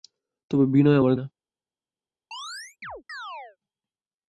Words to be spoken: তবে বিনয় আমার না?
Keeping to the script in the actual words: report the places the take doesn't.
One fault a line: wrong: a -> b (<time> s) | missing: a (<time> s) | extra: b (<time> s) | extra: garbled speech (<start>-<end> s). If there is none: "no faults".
no faults